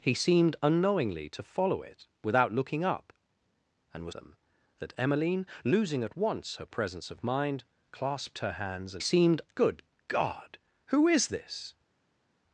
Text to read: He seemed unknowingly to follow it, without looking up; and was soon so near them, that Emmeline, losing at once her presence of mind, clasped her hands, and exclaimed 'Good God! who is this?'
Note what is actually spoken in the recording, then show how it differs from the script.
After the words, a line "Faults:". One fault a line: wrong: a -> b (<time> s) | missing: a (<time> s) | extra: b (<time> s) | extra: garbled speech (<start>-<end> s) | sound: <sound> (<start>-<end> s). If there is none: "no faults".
He seemed unknowingly to follow it, without looking up; and was them, that Emmeline, losing at once her presence of mind, clasped her hands, and seemed 'Good God! who is this?'
Faults:
missing: soon so near (4.2 s)
wrong: exclaimed -> seemed (9.0 s)